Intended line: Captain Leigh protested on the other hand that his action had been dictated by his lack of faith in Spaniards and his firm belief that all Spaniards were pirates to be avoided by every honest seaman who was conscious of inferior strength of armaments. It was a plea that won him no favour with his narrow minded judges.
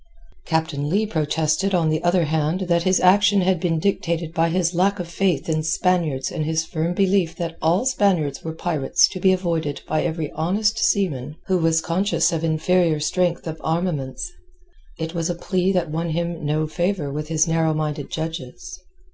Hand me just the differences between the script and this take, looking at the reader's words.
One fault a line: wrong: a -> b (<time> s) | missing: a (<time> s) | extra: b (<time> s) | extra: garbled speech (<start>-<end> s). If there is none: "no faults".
no faults